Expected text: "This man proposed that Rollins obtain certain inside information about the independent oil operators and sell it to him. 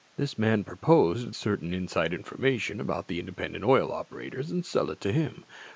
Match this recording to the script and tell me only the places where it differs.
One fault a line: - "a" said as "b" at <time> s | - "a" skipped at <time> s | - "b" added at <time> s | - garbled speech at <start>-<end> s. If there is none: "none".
- "that Rollins obtain" skipped at 1.3 s